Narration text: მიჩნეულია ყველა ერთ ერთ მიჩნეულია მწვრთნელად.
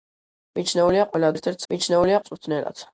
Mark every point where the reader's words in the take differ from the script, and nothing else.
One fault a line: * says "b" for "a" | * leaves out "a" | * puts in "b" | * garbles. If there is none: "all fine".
all fine